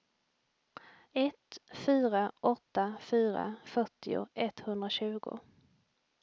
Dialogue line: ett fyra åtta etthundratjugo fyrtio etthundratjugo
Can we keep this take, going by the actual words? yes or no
no